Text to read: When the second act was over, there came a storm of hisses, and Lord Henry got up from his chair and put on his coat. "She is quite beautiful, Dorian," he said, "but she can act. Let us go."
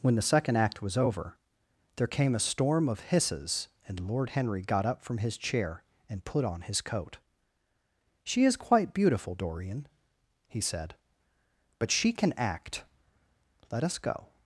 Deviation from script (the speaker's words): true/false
false